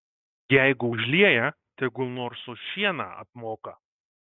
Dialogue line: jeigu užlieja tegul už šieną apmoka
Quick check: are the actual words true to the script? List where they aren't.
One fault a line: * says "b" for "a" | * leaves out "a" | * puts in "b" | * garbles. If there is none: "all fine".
* puts in "nors"